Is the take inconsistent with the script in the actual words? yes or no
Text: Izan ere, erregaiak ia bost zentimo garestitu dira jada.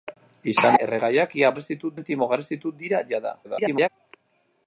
yes